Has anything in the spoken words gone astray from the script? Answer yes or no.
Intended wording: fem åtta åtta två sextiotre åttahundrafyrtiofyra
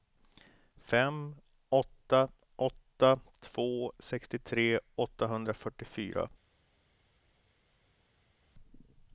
no